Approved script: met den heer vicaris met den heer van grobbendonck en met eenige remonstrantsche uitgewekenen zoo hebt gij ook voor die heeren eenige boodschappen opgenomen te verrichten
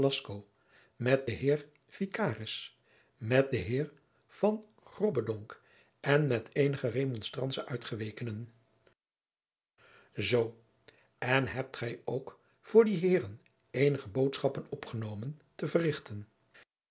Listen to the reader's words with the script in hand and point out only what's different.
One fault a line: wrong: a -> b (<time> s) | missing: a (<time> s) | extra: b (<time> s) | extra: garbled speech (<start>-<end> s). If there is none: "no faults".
extra: en (11.2 s)